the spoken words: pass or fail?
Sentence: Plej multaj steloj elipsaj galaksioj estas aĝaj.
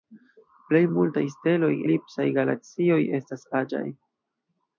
pass